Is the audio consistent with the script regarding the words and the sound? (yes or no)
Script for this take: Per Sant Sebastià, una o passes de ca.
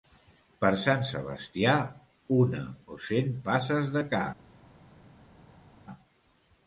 no